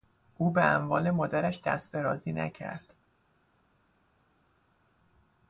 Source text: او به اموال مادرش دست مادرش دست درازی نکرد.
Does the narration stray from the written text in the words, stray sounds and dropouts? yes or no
yes